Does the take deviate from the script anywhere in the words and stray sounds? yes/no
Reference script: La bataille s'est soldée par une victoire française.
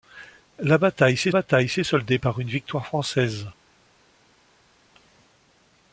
yes